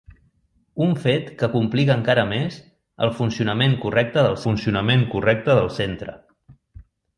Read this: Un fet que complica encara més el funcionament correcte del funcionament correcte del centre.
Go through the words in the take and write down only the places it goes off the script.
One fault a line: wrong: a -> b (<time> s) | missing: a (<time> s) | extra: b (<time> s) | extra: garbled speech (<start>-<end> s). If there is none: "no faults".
no faults